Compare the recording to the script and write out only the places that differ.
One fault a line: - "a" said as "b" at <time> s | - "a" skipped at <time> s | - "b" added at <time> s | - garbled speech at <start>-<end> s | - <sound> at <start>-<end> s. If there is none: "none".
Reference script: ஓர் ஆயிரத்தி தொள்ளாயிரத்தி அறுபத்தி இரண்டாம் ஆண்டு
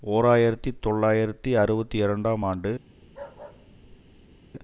- bark at 3.0-4.4 s